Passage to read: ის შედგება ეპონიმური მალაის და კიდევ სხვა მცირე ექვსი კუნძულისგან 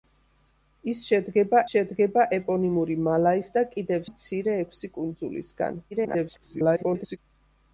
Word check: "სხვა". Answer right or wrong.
wrong